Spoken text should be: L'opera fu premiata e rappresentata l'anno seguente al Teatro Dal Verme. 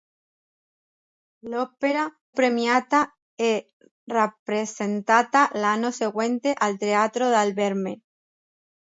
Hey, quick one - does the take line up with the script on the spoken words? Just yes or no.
no